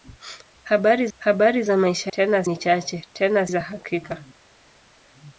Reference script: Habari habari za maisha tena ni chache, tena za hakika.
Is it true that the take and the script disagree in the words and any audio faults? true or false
false